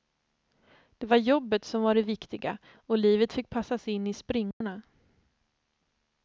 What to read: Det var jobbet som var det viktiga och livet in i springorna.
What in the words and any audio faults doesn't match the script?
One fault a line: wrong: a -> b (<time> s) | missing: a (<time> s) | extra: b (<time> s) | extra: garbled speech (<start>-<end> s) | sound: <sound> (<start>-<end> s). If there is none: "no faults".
extra: fick passas (3.3 s)
sound: dropout (4.5-4.6 s)